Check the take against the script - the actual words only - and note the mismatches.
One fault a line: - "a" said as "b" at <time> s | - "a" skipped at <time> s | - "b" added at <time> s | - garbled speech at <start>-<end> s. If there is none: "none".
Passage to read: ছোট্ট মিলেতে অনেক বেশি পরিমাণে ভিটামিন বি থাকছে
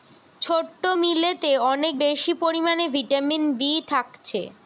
none